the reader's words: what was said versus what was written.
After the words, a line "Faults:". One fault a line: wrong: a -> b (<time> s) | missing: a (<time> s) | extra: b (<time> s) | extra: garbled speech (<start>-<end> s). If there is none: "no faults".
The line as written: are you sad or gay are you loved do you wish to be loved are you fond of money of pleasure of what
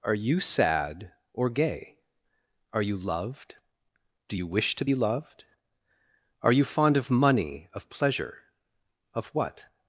are you sad or gay are you loved do you wish to be loved are you fond of money of pleasure of what
Faults:
no faults